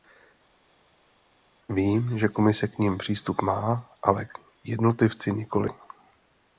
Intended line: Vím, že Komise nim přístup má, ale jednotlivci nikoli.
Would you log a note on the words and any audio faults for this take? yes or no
yes